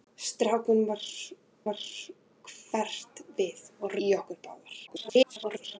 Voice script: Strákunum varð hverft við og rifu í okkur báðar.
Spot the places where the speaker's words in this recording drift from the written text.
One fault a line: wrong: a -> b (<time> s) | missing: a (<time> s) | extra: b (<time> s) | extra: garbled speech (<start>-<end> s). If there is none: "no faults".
extra: varð (1.7 s)
missing: rifu (4.0 s)
extra: garbled speech (4.9-5.8 s)